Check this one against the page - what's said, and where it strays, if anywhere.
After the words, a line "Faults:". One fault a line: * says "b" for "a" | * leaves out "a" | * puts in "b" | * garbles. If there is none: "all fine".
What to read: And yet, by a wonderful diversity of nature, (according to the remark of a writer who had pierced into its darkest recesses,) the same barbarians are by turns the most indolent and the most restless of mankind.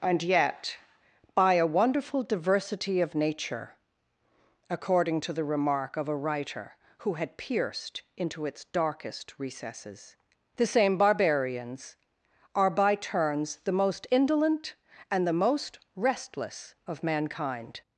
And yet, by a wonderful diversity of nature, (according to the remark of a writer who had pierced into its darkest recesses,) the same barbarians are by turns the most indolent and the most restless of mankind.
Faults:
all fine